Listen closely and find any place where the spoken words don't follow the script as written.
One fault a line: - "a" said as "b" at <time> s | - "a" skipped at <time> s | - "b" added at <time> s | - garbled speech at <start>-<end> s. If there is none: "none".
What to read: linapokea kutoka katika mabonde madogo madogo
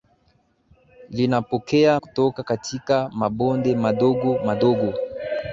none